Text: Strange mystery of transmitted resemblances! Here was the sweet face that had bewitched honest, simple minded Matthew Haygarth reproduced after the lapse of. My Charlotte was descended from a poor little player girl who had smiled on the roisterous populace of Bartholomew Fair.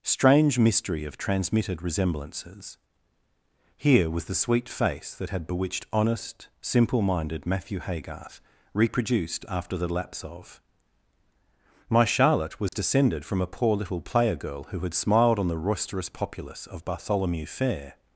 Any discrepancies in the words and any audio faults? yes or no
yes